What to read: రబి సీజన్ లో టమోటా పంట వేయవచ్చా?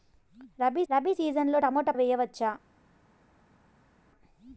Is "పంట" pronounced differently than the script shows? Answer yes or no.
yes